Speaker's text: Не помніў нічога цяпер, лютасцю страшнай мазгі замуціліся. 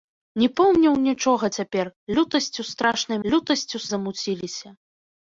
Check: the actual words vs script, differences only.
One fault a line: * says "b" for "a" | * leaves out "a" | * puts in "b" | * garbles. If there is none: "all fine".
* says "лютасцю" for "мазгі"